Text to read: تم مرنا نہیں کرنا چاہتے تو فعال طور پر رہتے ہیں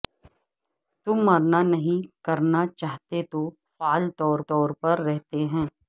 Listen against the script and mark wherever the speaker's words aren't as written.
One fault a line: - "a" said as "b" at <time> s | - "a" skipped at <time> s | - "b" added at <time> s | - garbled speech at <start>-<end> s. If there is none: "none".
- "طور" added at 4.5 s